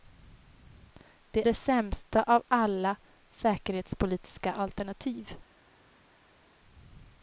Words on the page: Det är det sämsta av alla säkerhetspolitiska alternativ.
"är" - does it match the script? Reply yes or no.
no